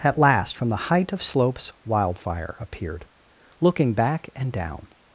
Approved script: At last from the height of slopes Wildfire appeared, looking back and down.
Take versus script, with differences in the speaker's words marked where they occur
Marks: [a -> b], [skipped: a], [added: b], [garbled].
At last from the height of slopes Wildfire appeared, looking back and down.